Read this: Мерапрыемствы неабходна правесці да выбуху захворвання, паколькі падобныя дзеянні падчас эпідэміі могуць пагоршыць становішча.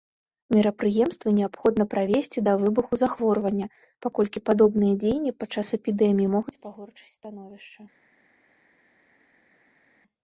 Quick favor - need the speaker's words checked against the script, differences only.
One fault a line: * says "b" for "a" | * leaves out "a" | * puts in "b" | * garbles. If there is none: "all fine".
all fine